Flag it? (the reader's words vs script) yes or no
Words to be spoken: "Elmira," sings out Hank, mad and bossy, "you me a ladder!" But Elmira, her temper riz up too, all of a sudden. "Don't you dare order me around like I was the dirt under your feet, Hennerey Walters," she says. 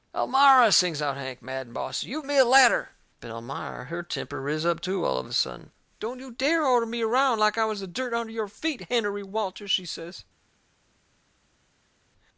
no